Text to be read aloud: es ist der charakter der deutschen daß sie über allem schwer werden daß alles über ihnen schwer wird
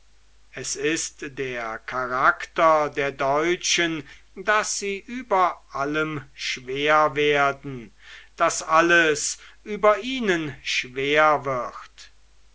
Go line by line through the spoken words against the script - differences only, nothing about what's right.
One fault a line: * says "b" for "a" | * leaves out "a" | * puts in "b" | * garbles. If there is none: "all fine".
all fine